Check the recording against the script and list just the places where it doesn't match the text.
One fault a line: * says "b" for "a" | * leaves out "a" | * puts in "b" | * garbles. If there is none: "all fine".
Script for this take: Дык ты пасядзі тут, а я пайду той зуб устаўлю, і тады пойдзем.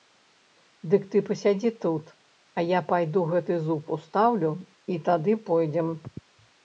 * says "гэты" for "той"